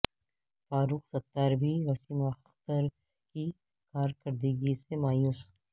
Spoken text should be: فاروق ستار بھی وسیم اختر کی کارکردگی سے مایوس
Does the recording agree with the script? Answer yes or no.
yes